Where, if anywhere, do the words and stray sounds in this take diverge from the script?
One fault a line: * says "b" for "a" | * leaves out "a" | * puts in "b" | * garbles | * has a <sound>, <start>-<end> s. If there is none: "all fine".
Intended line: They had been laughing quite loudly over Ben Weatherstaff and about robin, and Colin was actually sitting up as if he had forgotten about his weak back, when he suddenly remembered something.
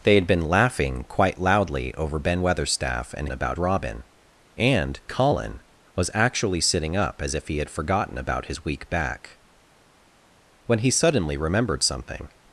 all fine